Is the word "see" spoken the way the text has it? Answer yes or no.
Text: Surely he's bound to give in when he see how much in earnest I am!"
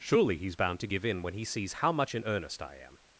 no